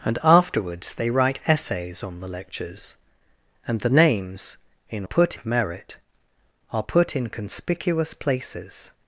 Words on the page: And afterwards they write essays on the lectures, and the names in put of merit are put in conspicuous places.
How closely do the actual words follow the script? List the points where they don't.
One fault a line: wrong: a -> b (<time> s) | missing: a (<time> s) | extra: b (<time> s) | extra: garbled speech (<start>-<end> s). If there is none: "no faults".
no faults